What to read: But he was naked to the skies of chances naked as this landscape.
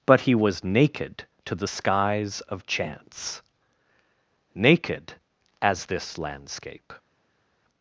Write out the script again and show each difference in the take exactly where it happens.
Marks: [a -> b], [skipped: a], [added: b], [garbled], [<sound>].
But he was naked to the skies of [chances -> chance] naked as this landscape.